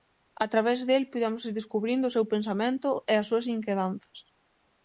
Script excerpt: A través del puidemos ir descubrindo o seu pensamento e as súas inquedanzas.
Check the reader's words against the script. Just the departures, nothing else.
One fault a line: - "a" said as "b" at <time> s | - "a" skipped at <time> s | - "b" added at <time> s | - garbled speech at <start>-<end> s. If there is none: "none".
none